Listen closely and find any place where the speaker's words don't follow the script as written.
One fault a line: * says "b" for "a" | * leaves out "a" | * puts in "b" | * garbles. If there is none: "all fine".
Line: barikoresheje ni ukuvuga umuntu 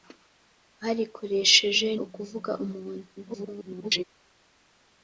* leaves out "ni"
* garbles